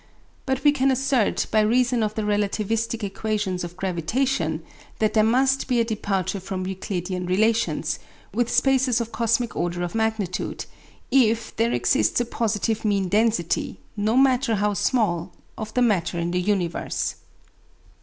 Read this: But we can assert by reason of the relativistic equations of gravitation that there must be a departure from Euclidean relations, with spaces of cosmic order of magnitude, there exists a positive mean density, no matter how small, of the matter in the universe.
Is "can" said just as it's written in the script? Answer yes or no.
yes